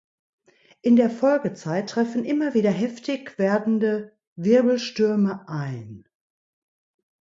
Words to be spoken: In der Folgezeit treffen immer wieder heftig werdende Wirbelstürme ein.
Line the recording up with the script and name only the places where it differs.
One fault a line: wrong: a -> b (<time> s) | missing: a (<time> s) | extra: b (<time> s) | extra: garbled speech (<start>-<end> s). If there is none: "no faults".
no faults